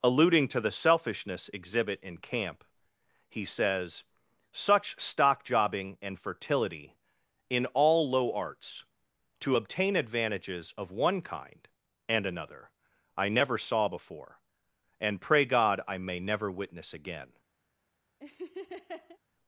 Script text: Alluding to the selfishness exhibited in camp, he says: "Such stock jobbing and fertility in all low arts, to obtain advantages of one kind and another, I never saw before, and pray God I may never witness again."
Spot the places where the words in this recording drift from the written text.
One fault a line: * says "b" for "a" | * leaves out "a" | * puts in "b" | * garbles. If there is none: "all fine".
* says "exhibit" for "exhibited"